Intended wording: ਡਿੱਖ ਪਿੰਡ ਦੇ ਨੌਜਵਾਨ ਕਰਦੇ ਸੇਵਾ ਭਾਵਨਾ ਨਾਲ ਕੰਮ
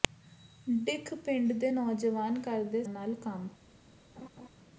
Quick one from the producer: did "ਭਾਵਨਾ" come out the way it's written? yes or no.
no